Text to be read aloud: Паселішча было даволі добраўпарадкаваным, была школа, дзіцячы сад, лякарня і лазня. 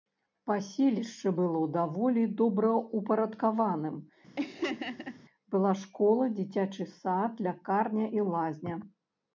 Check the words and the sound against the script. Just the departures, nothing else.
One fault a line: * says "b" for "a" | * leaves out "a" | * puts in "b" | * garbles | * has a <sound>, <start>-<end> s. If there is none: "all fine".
* has a laugh, 4.4-5.2 s